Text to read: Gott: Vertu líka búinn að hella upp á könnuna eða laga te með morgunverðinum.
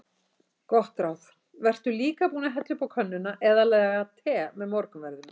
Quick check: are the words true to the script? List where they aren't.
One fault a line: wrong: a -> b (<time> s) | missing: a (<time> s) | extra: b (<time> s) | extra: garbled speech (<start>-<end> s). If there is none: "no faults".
extra: ráð (1.0 s)